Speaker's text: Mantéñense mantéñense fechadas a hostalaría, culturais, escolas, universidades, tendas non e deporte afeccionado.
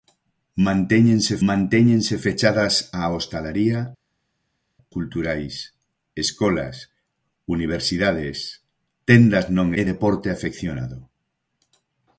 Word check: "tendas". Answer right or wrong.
right